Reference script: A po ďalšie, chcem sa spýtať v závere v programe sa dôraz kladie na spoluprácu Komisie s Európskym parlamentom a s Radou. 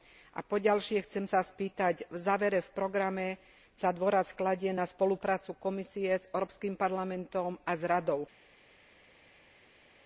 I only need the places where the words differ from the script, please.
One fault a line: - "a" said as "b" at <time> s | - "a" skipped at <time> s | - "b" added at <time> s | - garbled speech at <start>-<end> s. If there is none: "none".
none